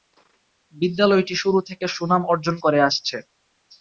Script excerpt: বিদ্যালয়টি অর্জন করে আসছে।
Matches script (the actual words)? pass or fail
fail